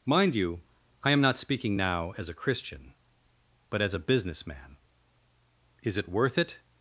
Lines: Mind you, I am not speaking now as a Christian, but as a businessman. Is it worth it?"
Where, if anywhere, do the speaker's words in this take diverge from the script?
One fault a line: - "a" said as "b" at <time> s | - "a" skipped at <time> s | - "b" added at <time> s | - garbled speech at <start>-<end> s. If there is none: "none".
none